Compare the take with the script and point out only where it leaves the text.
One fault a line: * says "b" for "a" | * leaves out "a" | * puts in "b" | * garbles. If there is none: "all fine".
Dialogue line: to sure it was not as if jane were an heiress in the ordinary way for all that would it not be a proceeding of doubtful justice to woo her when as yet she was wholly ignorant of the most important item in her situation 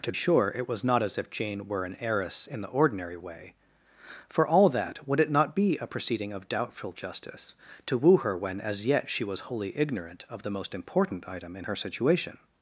all fine